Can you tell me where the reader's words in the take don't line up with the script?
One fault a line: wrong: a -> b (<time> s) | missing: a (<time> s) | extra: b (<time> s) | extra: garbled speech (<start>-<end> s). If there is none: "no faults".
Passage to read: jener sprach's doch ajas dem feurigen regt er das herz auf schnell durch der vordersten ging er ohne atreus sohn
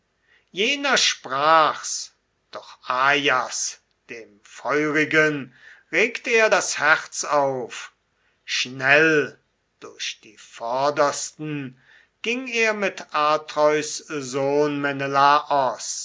wrong: der -> die (10.2 s)
wrong: ohne -> mit (12.7 s)